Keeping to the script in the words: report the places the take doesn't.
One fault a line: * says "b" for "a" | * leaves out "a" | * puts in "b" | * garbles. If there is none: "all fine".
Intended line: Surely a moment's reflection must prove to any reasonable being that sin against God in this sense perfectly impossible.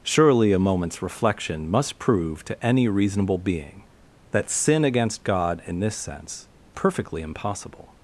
all fine